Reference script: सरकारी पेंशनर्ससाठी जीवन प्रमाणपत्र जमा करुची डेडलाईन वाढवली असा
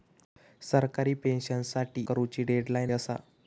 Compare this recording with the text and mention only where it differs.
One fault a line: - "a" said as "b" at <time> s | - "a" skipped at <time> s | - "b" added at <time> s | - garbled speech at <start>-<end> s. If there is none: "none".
- "जीवन प्रमाणपत्र जमा" skipped at 2.0 s
- "वाढवली" skipped at 2.9 s